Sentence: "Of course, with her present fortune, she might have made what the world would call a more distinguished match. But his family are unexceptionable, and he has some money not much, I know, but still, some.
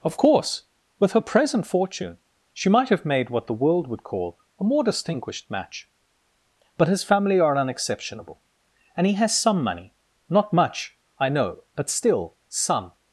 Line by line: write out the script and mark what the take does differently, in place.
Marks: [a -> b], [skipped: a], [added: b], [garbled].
"Of course, with her present fortune, she might have made what the world would call a more distinguished match. But his family are unexceptionable, and he has some money not much, I know, but still, some.